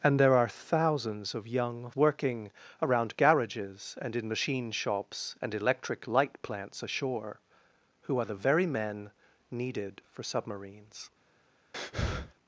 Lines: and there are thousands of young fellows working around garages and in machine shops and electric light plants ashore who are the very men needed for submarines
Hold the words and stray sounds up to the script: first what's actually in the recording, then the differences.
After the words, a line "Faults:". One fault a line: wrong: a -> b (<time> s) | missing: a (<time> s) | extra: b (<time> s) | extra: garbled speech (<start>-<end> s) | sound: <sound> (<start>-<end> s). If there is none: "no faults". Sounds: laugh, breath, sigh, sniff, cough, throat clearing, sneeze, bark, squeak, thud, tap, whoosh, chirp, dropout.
and there are thousands of young working around garages and in machine shops and electric light plants ashore who are the very men needed for submarines
Faults:
missing: fellows (1.9 s)
sound: breath (11.7-12.3 s)